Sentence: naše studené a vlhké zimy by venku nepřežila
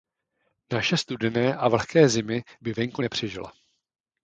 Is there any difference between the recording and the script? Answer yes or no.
no